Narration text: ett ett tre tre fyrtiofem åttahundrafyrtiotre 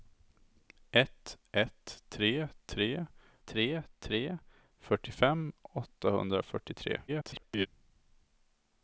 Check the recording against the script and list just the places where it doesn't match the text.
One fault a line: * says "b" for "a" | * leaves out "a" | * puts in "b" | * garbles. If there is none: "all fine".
* puts in "tre tre"
* garbles